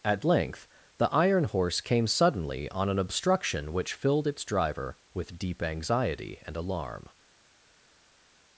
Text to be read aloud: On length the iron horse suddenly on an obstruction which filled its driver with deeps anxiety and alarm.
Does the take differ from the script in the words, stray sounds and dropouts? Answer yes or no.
yes